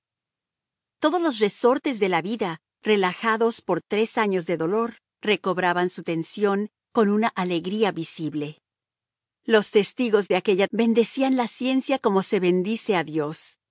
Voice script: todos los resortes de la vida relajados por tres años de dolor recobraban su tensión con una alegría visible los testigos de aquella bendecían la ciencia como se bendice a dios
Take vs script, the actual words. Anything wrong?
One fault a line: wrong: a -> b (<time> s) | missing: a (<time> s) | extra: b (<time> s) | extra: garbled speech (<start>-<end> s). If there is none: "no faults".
no faults